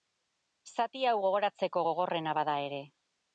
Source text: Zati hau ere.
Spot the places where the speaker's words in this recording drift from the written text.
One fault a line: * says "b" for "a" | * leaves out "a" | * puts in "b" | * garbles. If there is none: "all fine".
* puts in "gogoratzeko gogorrena bada"